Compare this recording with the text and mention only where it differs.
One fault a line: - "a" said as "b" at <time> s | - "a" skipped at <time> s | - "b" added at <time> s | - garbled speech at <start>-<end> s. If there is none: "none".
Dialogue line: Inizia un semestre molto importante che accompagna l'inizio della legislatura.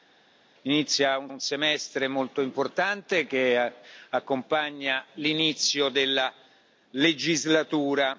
- "un" added at 1.3 s